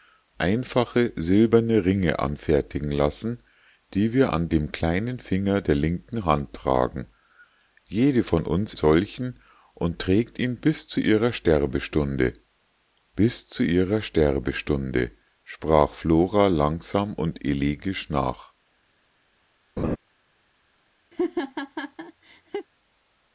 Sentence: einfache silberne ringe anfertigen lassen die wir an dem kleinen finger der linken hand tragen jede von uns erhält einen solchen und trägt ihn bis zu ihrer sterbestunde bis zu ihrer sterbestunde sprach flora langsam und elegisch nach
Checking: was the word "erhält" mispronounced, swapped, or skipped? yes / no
yes